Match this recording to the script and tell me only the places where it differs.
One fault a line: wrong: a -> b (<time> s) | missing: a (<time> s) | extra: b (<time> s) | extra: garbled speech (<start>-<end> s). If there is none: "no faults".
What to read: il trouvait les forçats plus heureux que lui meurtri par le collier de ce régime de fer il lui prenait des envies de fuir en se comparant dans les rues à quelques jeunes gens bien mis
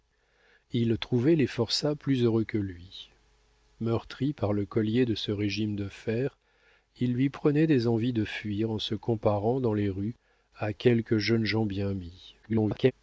extra: garbled speech (12.4-12.9 s)